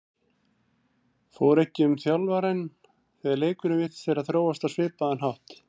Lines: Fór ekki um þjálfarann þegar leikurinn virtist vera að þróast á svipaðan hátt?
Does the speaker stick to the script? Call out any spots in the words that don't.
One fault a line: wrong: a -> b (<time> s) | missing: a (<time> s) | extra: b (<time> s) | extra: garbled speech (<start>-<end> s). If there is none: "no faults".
no faults